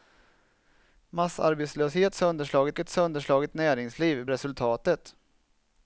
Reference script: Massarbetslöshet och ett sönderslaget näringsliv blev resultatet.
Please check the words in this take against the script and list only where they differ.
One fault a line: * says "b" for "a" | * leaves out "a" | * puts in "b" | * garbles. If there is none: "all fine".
* says "sönderslaget" for "och"
* leaves out "blev"